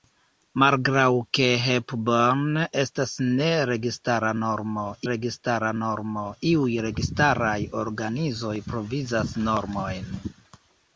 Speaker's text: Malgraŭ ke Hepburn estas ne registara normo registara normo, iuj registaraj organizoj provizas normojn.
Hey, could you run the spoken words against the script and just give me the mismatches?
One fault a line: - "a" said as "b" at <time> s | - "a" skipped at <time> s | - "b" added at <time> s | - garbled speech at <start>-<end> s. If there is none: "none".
none